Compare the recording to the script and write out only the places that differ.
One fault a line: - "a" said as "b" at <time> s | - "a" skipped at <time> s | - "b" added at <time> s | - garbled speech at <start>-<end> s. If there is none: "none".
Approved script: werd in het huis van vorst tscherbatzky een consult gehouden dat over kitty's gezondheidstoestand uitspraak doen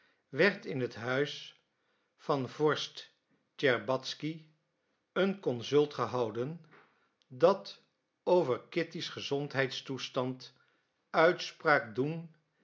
none